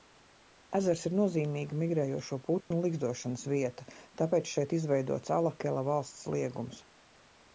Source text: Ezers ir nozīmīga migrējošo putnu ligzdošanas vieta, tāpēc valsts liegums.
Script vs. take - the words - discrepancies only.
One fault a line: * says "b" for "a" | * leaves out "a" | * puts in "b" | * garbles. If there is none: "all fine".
* puts in "šeit izveidots Alakela"